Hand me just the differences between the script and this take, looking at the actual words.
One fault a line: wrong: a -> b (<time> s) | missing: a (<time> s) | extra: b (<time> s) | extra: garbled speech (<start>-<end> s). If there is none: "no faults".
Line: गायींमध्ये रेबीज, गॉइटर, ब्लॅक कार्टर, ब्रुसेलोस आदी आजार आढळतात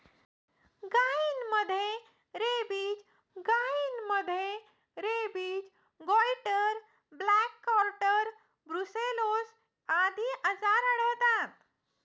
extra: गायींमध्ये रेबीज (3.4 s)